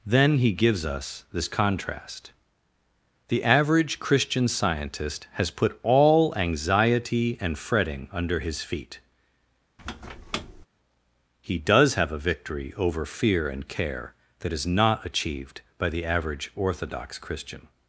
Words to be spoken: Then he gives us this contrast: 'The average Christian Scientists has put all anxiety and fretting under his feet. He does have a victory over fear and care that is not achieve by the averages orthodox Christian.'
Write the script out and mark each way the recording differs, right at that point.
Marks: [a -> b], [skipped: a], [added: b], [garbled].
Then he gives us this contrast: 'The average Christian [Scientists -> Scientist] has put all anxiety and fretting under his feet. He does have a victory over fear and care that is not [achieve -> achieved] by the [averages -> average] orthodox Christian.'